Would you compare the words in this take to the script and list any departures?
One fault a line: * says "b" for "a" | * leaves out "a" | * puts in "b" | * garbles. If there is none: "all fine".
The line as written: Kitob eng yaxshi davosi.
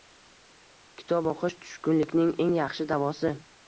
* puts in "o‘qish tushkunlikning"